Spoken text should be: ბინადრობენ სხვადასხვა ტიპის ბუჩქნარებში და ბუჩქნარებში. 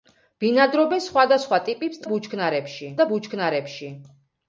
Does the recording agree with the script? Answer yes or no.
yes